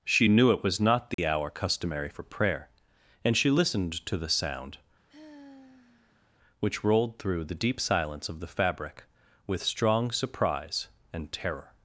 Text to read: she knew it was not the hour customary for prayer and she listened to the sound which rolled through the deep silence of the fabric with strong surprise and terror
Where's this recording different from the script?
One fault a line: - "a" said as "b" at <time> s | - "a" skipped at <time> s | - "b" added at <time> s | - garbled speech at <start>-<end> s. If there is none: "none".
none